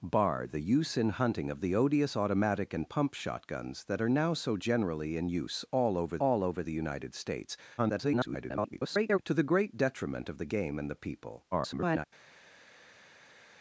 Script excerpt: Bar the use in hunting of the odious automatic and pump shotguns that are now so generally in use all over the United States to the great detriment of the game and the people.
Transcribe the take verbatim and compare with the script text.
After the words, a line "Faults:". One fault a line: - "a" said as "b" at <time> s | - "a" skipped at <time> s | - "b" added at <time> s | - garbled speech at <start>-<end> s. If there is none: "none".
Bar the use in hunting of the odious automatic and pump shotguns that are now so generally in use all over all over the United States [garbled] to the great detriment of the game and the people. [garbled]
Faults:
- "all over" added at 6.2 s
- garbled speech at 7.8-9.2 s
- garbled speech at 11.5-12.1 s